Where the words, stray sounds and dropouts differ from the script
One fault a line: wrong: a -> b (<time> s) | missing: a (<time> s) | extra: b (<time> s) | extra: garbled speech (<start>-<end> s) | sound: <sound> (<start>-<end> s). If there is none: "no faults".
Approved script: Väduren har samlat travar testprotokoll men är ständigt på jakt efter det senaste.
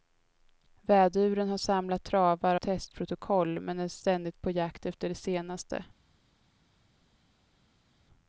no faults